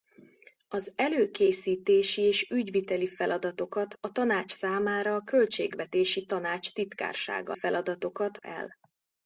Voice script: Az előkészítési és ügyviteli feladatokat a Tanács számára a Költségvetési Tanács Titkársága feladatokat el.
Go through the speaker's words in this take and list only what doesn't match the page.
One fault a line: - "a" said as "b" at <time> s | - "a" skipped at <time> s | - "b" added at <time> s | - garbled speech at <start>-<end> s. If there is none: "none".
none